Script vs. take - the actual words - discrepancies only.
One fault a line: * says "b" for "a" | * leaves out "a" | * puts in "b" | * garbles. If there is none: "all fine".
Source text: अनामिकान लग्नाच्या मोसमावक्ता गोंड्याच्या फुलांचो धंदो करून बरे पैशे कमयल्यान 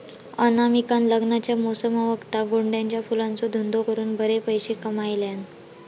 all fine